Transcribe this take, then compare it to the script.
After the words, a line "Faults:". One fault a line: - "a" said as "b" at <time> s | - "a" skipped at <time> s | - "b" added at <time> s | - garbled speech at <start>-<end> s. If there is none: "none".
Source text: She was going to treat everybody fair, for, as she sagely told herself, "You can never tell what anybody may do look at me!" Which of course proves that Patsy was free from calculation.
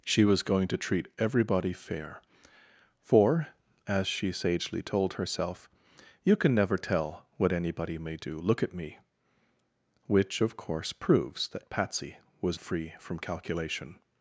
She was going to treat everybody fair, for, as she sagely told herself, "You can never tell what anybody may do look at me!" Which of course proves that Patsy was free from calculation.
Faults:
none